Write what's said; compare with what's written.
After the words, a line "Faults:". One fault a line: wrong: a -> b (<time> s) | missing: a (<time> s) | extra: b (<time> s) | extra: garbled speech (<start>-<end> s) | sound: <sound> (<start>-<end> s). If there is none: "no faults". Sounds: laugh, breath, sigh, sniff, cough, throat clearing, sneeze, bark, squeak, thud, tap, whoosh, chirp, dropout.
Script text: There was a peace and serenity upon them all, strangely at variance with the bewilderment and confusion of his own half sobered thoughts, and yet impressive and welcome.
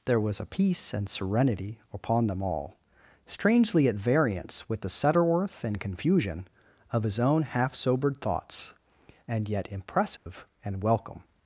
There was a peace and serenity upon them all, strangely at variance with the setterworth and confusion of his own half sobered thoughts, and yet impressive and welcome.
Faults:
wrong: bewilderment -> setterworth (4.9 s)
sound: dropout (10.2-10.3 s)